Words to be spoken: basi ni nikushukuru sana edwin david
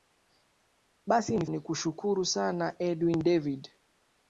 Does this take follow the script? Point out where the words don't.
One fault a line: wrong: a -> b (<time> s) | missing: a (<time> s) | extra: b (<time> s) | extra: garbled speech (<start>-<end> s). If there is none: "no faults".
no faults